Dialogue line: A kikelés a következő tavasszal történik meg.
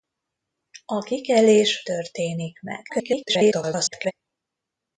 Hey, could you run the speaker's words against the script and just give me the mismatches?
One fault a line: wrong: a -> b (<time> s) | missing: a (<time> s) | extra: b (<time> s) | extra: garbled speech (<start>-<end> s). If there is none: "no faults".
missing: a következő tavasszal (1.8 s)
extra: garbled speech (2.9-4.1 s)